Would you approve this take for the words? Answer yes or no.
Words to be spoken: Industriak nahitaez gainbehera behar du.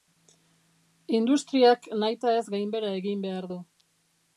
no